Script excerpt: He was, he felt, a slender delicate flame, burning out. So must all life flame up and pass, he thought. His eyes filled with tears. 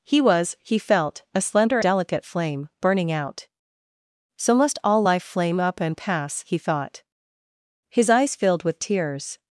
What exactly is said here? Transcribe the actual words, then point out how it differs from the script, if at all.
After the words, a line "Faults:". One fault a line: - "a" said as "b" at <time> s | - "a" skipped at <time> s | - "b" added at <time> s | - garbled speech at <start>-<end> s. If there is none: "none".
He was, he felt, a slender delicate flame, burning out. So must all life flame up and pass, he thought. His eyes filled with tears.
Faults:
none